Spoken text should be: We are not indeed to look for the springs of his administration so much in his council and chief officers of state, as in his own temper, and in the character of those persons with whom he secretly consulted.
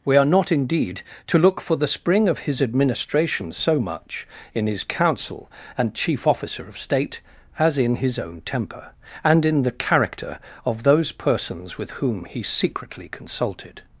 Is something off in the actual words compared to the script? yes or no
yes